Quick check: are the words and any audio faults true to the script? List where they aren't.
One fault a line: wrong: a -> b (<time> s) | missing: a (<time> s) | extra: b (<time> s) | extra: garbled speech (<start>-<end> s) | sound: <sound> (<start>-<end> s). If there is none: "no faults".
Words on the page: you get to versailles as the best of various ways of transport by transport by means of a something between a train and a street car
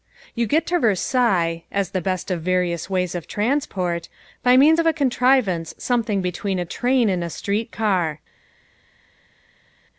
missing: transport by (4.5 s)
extra: contrivance (4.9 s)